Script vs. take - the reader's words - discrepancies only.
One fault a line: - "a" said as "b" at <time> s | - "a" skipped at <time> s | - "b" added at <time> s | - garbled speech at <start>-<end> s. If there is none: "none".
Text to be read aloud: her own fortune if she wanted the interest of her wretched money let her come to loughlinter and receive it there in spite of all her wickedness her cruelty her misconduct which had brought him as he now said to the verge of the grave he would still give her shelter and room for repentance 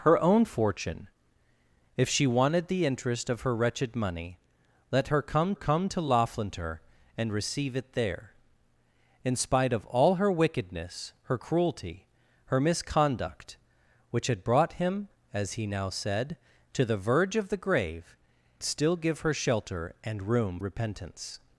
- "come" added at 5.5 s
- "he would" skipped at 18.2 s
- "for" skipped at 20.6 s